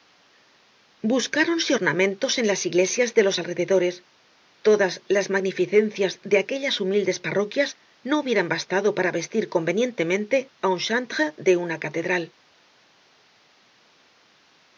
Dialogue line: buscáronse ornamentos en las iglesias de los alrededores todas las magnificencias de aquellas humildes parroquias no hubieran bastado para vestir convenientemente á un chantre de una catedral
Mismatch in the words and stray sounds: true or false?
false